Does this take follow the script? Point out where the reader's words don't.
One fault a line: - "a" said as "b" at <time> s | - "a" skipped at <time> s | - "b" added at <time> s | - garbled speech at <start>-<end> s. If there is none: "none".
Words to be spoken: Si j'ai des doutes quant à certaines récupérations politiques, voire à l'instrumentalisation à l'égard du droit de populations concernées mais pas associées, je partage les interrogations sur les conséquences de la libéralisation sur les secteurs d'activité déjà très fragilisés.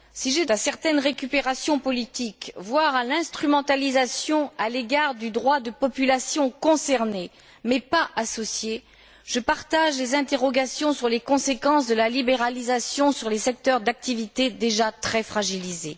- "des doutes quant" skipped at 0.5 s